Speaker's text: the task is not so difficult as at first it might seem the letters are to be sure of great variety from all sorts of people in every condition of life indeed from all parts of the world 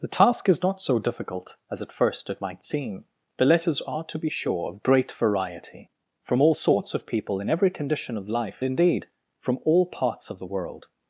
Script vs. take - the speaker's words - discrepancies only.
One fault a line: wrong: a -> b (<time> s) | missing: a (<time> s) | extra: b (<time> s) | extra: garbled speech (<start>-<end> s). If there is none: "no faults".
no faults